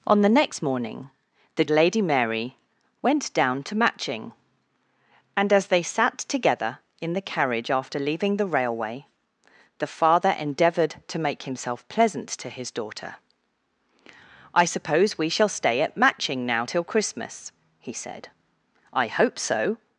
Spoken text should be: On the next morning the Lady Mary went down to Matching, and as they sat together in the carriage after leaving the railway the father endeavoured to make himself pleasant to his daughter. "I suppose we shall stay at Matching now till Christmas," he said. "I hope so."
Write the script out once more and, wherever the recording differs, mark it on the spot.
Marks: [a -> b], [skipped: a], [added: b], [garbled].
On the next morning the Lady Mary went down to Matching, and as they sat together in the carriage after leaving the railway the father endeavoured to make himself pleasant to his daughter. "I suppose we shall stay at Matching now till Christmas," he said. "I hope so."